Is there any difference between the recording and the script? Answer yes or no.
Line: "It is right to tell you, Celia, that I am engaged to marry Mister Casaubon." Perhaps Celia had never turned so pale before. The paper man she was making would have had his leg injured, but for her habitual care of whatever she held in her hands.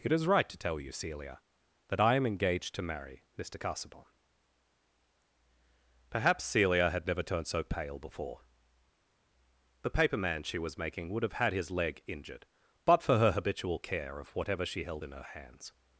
no